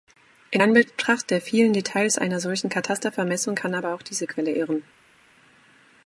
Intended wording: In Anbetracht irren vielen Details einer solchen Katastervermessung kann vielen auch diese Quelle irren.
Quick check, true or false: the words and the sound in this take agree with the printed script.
false